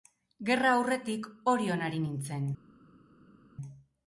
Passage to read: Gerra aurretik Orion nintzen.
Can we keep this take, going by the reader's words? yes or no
no